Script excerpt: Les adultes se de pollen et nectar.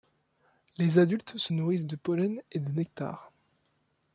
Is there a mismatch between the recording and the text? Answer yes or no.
yes